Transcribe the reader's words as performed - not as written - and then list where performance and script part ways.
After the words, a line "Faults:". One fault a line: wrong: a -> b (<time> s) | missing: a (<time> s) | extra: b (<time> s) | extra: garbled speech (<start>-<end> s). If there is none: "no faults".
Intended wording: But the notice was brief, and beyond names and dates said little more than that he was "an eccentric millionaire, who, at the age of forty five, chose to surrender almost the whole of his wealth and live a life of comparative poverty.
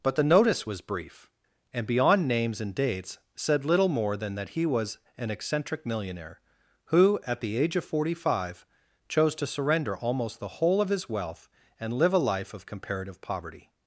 But the notice was brief, and beyond names and dates said little more than that he was "an eccentric millionaire, who, at the age of forty five, chose to surrender almost the whole of his wealth and live a life of comparative poverty.
Faults:
no faults